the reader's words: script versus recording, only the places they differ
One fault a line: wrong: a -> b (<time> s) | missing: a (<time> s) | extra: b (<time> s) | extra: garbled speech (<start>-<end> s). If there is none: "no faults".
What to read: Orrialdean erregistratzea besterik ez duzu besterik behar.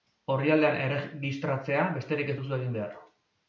wrong: besterik -> egin (2.6 s)